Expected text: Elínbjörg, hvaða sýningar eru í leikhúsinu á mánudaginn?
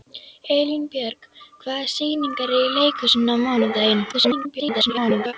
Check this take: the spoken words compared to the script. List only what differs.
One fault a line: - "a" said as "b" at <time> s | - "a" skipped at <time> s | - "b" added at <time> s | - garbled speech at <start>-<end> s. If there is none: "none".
- garbled speech at 4.1-5.3 s